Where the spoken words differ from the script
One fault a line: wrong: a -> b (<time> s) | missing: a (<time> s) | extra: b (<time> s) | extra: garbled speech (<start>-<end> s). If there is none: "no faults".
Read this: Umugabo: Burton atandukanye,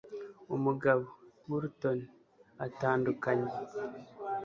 no faults